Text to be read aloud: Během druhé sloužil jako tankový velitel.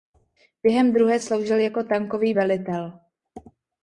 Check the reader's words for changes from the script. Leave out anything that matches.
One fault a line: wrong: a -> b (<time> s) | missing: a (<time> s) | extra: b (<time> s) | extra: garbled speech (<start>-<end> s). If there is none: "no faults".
no faults